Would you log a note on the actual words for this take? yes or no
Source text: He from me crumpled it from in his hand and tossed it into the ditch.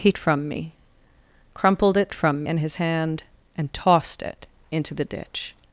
no